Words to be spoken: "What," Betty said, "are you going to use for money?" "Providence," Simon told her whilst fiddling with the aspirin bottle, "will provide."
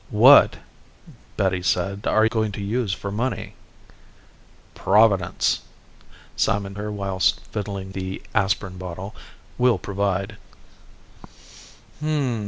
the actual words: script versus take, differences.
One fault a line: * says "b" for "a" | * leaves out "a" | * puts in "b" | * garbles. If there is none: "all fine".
* leaves out "you"
* leaves out "told"
* leaves out "with"